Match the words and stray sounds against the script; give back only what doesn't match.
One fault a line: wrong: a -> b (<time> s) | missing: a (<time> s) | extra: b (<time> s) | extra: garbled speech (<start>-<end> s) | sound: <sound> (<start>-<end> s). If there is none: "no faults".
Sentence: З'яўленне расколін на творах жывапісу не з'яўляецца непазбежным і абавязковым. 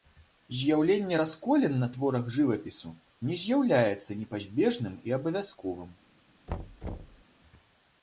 sound: thud (6.5-7.2 s)